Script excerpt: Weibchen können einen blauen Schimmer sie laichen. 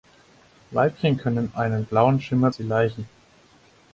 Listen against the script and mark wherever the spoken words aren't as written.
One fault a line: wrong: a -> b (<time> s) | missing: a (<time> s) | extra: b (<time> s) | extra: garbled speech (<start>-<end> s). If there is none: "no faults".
no faults